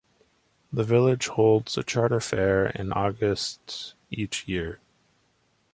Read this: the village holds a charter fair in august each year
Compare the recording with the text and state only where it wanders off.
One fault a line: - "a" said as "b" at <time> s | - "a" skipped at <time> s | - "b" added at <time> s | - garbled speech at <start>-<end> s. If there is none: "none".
none